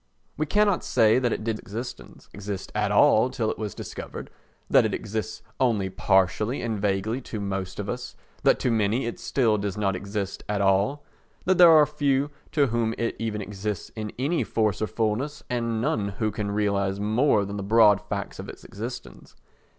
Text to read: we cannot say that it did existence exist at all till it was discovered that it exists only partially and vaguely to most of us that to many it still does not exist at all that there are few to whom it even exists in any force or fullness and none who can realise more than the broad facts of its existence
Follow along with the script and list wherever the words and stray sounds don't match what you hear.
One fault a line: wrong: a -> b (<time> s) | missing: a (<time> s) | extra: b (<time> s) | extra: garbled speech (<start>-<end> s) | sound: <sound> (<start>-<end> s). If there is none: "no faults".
no faults